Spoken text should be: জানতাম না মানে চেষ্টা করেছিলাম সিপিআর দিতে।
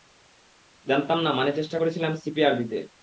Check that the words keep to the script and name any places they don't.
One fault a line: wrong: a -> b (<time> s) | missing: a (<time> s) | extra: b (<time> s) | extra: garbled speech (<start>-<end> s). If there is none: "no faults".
no faults